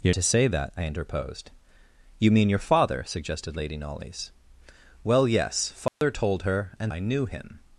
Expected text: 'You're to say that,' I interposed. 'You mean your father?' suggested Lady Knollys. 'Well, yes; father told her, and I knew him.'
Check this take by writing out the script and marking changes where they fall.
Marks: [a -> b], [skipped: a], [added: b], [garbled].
'You're to say that,' I interposed. 'You mean your father?' suggested Lady Knollys. 'Well, yes; father told her, and I knew him.'